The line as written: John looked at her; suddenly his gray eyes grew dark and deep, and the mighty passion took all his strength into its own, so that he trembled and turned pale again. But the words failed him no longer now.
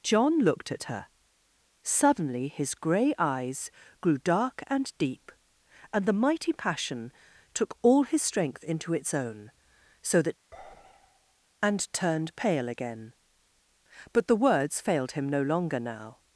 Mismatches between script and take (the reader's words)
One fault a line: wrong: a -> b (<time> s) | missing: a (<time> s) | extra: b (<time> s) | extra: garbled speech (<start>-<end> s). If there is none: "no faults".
missing: he trembled (10.4 s)